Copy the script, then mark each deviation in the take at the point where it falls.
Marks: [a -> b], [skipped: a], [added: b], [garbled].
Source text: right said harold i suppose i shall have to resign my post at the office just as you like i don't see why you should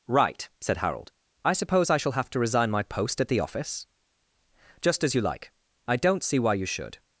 right said harold i suppose i shall have to resign my post at the office just as you like i don't see why you should